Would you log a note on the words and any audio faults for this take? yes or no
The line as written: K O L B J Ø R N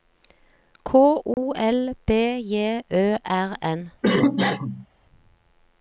yes